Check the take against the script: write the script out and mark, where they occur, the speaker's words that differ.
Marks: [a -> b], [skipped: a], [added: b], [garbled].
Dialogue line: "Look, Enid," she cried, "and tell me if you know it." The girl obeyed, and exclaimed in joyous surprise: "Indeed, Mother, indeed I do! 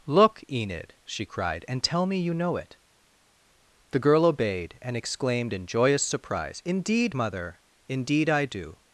"Look, Enid," she cried, "and tell me [skipped: if] you know it." The girl obeyed, and exclaimed in joyous surprise: "Indeed, Mother, indeed I do!